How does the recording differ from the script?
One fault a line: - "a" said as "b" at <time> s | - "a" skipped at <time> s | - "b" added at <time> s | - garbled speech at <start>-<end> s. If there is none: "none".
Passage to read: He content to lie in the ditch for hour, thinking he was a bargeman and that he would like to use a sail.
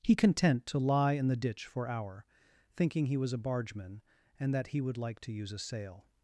none